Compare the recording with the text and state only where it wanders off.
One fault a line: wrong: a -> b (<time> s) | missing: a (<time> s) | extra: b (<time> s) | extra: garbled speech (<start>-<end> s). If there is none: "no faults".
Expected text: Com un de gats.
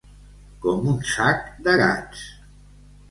extra: sac (1.1 s)